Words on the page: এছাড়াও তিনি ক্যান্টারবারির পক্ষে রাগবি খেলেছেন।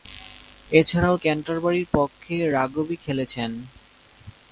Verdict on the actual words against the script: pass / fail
fail